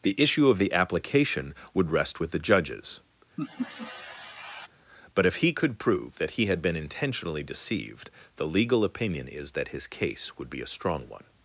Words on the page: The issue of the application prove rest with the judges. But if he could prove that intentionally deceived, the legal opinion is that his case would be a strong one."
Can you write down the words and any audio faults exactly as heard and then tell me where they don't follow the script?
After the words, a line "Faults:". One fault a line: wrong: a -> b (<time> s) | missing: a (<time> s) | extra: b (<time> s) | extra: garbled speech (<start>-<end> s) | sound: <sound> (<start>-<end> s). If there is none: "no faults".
The issue of the application would rest with the judges. But if he could prove that he had been intentionally deceived, the legal opinion is that his case would be a strong one."
Faults:
wrong: prove -> would (1.8 s)
sound: laugh (3.4-4.7 s)
extra: he had been (6.3 s)